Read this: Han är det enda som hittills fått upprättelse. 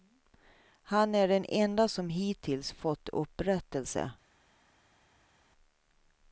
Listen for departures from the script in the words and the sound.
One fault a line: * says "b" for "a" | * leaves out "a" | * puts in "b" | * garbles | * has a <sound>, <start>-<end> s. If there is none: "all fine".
* says "den" for "det"